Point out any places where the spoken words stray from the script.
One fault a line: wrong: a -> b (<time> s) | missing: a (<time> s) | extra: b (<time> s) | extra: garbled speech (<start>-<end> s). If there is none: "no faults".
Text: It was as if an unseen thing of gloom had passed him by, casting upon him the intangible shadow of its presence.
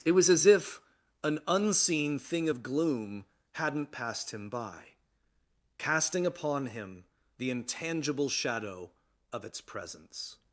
wrong: had -> hadn't (3.5 s)